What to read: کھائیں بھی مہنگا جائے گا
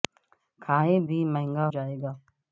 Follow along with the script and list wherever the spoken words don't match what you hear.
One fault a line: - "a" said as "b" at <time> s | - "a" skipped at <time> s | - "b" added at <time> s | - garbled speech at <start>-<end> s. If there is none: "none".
none